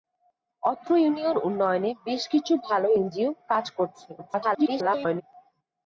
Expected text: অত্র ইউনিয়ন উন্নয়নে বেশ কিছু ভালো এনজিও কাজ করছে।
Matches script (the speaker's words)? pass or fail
fail